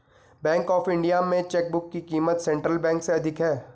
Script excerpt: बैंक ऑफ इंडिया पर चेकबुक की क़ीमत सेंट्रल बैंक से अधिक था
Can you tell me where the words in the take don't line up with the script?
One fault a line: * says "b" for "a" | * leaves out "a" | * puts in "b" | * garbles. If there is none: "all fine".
* says "में" for "पर"
* says "है" for "था"